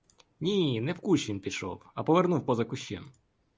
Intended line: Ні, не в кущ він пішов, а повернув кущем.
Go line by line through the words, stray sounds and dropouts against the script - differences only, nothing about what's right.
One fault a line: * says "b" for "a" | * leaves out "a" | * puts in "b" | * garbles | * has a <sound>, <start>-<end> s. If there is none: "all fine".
* puts in "поза"